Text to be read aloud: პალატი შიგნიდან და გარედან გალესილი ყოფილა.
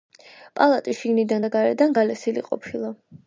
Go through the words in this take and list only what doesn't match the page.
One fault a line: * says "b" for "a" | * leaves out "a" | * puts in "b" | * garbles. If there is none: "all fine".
all fine